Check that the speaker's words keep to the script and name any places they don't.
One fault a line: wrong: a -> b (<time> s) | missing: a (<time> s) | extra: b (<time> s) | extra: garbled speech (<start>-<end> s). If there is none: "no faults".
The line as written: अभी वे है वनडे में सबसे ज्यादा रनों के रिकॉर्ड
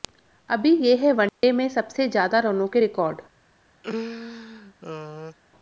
wrong: वे -> ये (0.8 s)